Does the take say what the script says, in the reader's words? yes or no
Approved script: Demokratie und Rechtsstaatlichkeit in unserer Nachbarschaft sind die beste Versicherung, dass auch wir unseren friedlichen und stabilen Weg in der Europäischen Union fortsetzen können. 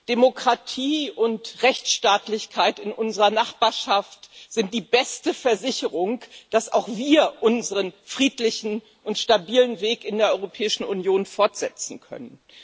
yes